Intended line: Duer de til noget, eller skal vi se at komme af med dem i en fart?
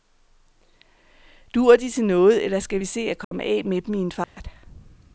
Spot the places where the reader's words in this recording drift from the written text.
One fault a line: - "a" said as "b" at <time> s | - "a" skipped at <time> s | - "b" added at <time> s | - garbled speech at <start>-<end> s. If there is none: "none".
none